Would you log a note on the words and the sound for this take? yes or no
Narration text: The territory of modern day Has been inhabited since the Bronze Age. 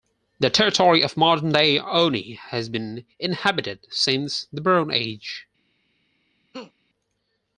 yes